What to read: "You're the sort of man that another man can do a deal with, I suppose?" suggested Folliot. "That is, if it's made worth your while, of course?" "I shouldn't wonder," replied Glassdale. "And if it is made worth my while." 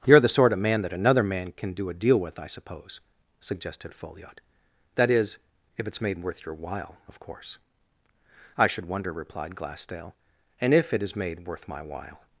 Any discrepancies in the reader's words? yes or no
yes